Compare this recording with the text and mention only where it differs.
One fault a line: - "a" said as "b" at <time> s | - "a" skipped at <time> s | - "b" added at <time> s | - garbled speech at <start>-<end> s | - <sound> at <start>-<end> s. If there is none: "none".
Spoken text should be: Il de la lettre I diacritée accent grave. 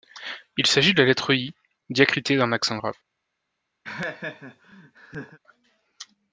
- "s'agit" added at 0.7 s
- "d'un" added at 2.4 s
- laugh at 3.8-5.4 s